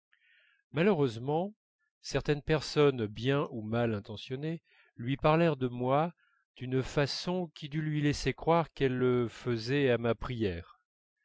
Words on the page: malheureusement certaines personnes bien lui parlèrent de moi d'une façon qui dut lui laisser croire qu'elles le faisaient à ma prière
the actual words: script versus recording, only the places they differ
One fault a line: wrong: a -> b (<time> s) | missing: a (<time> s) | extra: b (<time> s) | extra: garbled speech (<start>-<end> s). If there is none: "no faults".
extra: ou mal intentionnées (3.5 s)